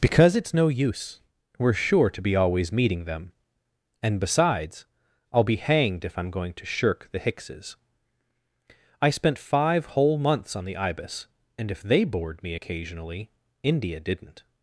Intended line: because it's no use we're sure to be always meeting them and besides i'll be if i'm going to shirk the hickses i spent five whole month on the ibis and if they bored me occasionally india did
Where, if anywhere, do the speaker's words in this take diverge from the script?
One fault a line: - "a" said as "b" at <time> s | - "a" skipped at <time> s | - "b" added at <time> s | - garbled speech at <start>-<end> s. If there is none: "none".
- "hanged" added at 5.6 s
- "month" said as "months" at 10.2 s
- "did" said as "didn't" at 14.0 s